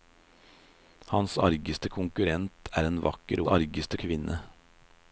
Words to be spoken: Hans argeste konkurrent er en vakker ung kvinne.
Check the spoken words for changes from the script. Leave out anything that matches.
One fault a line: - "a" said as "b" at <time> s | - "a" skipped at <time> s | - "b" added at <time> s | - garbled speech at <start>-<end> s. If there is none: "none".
- "ung" said as "argeste" at 3.5 s